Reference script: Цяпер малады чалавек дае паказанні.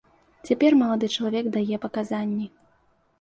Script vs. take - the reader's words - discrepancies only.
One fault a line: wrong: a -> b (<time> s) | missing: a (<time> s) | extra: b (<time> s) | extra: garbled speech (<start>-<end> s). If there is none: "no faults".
no faults